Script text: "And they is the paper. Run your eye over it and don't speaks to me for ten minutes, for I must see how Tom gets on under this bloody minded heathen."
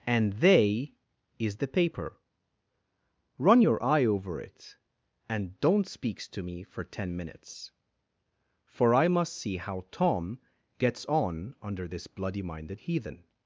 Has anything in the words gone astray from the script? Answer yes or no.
no